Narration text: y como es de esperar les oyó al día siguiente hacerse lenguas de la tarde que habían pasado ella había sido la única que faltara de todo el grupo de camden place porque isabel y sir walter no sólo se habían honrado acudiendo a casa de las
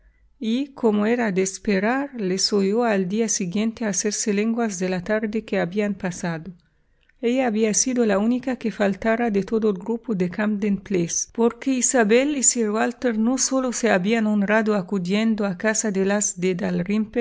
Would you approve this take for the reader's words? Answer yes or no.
no